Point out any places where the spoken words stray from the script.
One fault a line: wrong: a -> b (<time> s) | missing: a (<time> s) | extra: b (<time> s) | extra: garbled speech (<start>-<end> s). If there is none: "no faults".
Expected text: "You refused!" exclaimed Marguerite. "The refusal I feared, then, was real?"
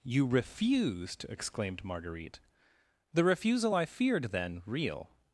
missing: was (4.6 s)